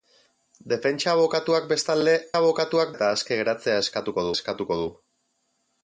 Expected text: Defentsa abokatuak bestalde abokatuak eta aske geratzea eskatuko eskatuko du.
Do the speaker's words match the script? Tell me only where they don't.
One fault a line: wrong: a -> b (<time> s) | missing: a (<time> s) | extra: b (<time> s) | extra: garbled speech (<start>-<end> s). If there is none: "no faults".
no faults